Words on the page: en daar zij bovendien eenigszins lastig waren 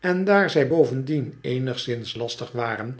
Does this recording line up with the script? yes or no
yes